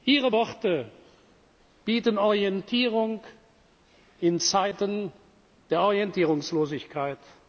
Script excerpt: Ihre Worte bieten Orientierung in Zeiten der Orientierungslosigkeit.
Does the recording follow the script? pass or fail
pass